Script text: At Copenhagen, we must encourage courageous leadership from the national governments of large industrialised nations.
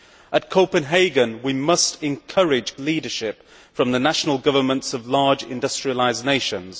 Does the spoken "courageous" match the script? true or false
false